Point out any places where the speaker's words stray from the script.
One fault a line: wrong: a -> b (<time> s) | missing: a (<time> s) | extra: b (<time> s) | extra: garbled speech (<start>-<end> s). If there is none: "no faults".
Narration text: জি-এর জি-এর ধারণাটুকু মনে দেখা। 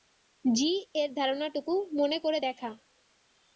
missing: জি-এর (1.1 s)
extra: করে (2.2 s)